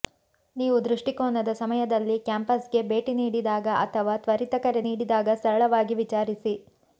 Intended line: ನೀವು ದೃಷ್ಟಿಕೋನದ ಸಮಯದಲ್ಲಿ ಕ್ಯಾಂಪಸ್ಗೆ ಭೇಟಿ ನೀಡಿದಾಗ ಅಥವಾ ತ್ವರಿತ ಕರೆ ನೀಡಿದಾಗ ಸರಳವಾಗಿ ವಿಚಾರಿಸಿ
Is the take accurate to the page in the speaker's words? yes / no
yes